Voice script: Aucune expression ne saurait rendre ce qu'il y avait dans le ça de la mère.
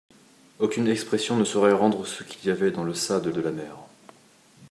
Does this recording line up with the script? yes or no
no